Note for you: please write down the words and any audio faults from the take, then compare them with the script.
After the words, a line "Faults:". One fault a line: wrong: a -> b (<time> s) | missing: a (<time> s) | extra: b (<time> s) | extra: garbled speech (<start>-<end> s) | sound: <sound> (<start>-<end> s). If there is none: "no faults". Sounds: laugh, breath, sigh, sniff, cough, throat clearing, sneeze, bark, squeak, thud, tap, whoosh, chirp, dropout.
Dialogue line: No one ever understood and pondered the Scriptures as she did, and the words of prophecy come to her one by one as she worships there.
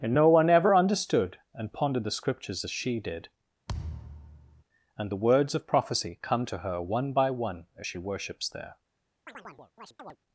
and No one ever understood and pondered the Scriptures as she did, and the words of prophecy come to her one by one as she worships there.
Faults:
extra: and (0.0 s)
sound: thud (3.7-4.6 s)
sound: chirp (9.3-10.2 s)